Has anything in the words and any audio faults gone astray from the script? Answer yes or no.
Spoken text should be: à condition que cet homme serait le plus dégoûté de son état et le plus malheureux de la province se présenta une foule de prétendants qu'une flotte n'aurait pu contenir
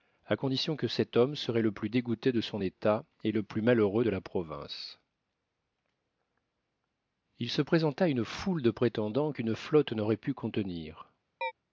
yes